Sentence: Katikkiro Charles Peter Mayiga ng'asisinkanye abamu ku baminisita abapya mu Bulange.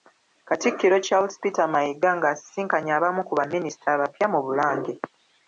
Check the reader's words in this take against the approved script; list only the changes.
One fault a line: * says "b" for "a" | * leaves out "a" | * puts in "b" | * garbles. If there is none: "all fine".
all fine